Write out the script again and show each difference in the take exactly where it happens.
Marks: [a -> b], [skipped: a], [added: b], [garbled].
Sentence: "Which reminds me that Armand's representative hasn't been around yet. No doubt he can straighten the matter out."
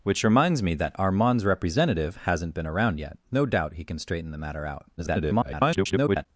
"Which reminds me that Armand's representative hasn't been around yet. No doubt he can straighten the matter out." [garbled]